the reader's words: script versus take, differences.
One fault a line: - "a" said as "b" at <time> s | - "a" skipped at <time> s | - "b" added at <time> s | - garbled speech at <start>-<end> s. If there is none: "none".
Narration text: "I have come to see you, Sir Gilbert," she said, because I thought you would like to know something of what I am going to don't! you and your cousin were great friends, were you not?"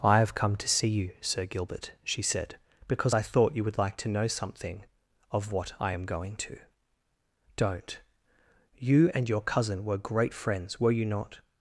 none